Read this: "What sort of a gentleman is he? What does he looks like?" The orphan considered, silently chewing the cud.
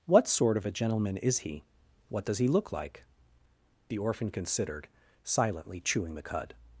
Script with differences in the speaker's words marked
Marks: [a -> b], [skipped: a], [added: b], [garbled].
"What sort of a gentleman is he? What does he [looks -> look] like?" The orphan considered, silently chewing the cud.